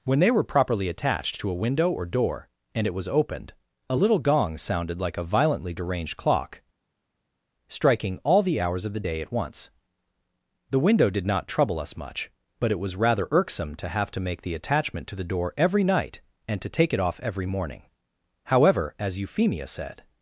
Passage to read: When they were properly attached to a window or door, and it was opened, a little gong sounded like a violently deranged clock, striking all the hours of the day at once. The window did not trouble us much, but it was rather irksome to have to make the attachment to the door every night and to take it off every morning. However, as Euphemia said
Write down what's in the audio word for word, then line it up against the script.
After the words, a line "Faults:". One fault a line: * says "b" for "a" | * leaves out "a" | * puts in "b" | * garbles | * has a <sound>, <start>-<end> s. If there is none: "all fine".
When they were properly attached to a window or door, and it was opened, a little gong sounded like a violently deranged clock, striking all the hours of the day at once. The window did not trouble us much, but it was rather irksome to have to make the attachment to the door every night and to take it off every morning. However, as Euphemia said
Faults:
all fine